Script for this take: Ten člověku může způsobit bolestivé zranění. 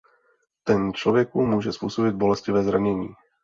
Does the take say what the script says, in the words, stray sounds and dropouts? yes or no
yes